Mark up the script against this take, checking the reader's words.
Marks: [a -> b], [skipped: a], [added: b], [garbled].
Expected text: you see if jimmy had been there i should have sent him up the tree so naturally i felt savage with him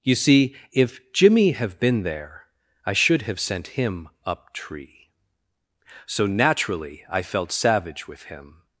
you see if jimmy [had -> have] been there i should have sent him up [skipped: the] tree so naturally i felt savage with him